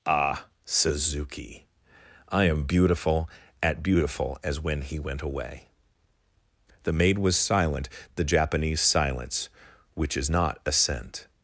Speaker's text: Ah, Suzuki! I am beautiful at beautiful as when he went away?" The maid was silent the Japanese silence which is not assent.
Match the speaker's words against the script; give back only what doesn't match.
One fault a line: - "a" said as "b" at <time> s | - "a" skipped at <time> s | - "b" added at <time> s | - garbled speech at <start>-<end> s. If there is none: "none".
none